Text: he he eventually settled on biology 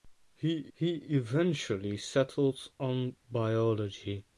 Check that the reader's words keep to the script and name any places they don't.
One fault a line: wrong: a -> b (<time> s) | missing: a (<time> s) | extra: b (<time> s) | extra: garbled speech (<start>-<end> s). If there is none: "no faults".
no faults